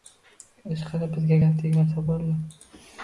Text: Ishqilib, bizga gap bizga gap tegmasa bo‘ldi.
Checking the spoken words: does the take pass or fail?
fail